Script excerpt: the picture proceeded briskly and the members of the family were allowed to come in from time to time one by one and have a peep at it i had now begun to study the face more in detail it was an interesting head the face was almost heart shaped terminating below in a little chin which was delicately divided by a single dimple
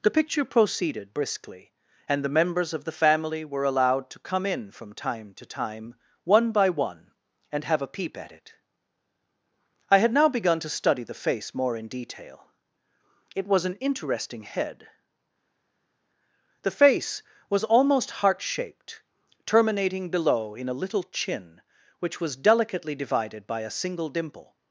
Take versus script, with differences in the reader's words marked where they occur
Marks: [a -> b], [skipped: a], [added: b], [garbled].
the picture proceeded briskly and the members of the family were allowed to come in from time to time one by one and have a peep at it i had now begun to study the face more in detail it was an interesting head the face was almost heart shaped terminating below in a little chin which was delicately divided by a single dimple